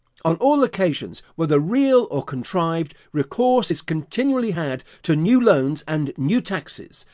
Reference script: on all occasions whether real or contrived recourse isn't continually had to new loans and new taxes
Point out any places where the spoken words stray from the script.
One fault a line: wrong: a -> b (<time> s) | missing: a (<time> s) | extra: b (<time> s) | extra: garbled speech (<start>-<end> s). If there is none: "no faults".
wrong: isn't -> is (3.7 s)